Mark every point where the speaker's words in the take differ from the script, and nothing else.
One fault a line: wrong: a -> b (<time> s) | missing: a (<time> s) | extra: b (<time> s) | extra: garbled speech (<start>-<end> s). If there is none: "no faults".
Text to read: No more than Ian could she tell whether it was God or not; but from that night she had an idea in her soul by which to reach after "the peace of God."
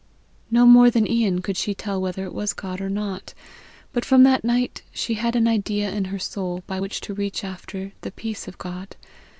no faults